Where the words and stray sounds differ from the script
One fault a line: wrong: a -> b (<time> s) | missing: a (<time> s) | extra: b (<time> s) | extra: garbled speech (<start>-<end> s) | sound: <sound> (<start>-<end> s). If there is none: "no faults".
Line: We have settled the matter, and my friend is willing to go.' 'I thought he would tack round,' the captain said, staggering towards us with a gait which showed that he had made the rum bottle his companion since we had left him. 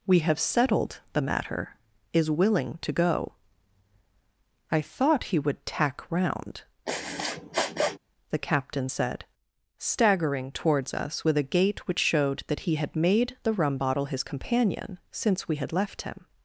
missing: and my friend (1.8 s)
sound: sniff (6.9-8.0 s)